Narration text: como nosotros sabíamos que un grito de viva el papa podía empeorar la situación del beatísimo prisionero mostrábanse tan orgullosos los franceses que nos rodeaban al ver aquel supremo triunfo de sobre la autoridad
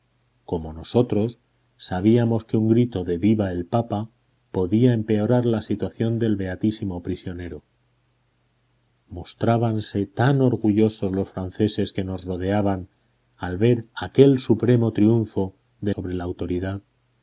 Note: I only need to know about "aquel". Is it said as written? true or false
true